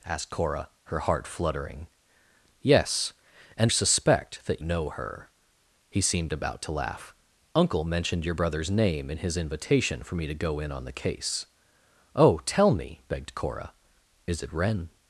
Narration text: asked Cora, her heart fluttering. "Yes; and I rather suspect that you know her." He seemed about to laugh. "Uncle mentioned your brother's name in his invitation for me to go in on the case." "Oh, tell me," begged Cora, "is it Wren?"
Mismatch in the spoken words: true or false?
true